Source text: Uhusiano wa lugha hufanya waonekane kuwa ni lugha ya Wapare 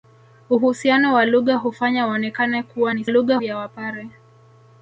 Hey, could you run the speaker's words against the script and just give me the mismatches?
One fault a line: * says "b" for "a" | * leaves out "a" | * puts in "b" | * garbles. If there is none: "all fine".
all fine